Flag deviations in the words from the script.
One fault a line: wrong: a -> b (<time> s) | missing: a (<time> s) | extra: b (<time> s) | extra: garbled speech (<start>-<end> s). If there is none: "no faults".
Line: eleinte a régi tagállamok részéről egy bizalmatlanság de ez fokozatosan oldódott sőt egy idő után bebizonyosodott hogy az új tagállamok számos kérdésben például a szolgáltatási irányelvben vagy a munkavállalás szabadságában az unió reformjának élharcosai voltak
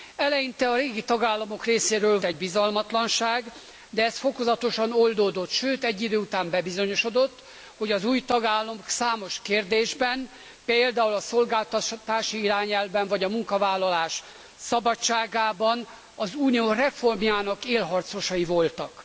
no faults